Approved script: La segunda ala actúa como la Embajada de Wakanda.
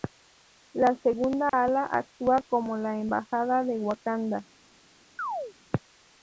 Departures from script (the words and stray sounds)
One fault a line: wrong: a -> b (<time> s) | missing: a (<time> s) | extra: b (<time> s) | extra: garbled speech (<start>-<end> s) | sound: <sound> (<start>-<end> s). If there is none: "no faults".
sound: dropout (1.5-1.5 s)
sound: chirp (5.2-5.5 s)